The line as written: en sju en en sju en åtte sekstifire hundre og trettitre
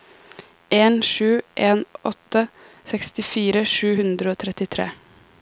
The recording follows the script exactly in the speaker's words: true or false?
false